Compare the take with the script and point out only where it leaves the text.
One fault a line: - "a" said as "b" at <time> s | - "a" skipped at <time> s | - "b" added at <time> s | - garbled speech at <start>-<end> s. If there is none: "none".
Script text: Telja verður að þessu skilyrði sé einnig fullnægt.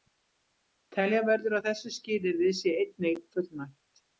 none